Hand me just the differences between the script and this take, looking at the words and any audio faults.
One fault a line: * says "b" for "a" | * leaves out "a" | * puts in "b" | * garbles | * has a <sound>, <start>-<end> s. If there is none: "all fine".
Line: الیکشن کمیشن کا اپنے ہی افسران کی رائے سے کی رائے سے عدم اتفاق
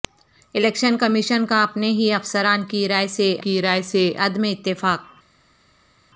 all fine